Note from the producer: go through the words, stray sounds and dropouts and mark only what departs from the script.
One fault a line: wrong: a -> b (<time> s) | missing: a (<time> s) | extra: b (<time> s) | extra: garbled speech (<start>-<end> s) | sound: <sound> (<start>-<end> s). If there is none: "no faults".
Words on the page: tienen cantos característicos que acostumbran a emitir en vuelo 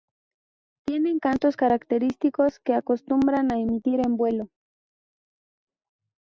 no faults